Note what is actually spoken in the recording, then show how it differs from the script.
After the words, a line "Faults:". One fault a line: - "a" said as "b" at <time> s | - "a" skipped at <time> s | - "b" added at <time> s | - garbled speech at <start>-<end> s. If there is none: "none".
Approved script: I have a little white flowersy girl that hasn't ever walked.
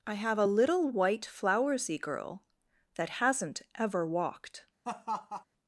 I have a little white flowersy girl that hasn't ever walked.
Faults:
none